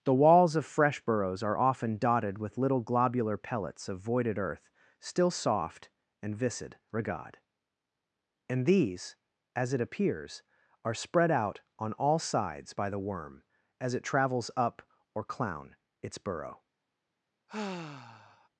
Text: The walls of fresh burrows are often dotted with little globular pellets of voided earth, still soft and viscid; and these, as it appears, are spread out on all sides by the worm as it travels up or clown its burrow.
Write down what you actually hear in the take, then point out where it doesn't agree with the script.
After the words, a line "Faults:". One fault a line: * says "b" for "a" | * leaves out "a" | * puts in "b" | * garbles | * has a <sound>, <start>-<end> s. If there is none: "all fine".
The walls of fresh burrows are often dotted with little globular pellets of voided earth, still soft and viscid; regard and these, as it appears, are spread out on all sides by the worm as it travels up or clown its burrow.
Faults:
* puts in "regard"
* has a sigh, 17.5-18.5 s